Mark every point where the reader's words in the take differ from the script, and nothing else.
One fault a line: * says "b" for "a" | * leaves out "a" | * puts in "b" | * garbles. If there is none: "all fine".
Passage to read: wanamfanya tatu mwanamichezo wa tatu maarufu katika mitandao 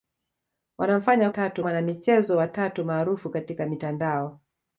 all fine